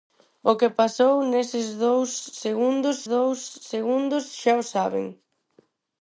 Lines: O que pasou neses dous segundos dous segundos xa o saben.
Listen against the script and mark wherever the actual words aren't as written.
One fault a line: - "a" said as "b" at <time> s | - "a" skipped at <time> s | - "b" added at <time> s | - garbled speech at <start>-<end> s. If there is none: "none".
none